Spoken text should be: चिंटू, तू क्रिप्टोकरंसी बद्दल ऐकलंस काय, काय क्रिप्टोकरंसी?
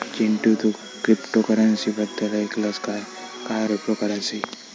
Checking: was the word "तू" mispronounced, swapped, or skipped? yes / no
no